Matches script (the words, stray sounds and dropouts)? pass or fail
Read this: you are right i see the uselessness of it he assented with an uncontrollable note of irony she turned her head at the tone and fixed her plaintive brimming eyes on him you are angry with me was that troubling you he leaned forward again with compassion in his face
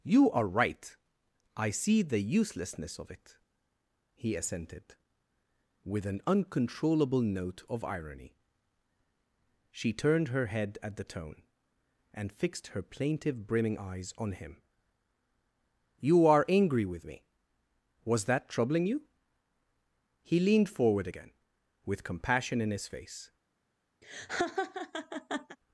fail